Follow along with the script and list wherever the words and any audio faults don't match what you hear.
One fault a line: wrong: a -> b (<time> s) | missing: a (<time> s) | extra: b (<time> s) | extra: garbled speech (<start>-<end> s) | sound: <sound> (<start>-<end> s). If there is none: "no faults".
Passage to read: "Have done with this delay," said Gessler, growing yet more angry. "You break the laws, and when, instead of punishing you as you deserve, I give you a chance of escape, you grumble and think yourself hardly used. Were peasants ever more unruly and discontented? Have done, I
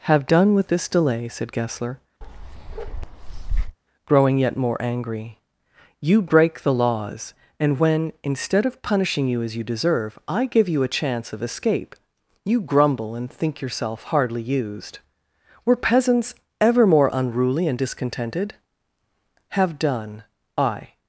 sound: bark (2.2-3.8 s)